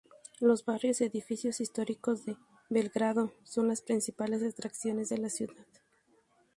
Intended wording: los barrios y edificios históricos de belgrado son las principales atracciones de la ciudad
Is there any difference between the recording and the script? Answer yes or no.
no